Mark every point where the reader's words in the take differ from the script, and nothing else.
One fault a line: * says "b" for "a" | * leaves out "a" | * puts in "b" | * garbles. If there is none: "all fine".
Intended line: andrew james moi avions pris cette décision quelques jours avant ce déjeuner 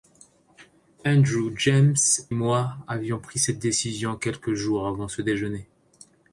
all fine